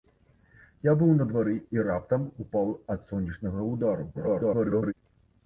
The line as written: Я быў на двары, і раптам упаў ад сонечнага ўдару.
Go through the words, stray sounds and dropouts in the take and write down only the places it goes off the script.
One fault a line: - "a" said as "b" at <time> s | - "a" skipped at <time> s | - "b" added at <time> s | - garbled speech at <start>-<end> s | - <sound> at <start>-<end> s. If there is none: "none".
- garbled speech at 4.1-4.9 s